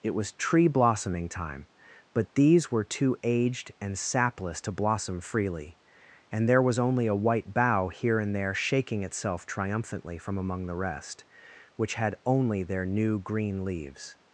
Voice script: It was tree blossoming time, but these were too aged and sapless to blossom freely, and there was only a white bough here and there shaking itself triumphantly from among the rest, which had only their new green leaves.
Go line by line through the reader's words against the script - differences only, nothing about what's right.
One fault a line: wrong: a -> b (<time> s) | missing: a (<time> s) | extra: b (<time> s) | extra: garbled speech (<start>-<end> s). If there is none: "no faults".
no faults